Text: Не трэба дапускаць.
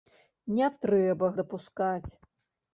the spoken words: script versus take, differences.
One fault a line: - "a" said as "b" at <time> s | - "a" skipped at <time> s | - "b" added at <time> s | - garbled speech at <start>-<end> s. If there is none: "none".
none